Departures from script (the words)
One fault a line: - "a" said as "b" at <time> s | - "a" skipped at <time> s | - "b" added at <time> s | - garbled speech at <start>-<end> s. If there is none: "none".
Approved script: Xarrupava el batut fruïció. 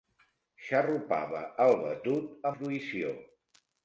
none